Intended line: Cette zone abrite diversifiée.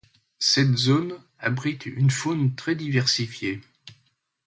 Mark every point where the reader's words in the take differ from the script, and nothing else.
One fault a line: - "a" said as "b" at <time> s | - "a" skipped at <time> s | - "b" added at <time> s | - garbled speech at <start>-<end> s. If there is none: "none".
- "une faune très" added at 1.9 s